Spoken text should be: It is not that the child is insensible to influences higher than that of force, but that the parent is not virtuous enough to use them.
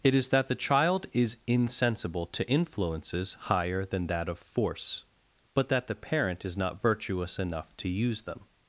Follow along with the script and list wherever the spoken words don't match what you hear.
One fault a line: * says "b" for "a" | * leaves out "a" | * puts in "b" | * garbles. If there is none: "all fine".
* leaves out "not"